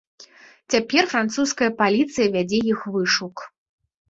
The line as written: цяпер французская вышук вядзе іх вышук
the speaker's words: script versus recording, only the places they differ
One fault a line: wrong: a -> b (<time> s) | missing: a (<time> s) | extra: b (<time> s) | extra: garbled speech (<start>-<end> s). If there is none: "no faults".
wrong: вышук -> паліцыя (1.8 s)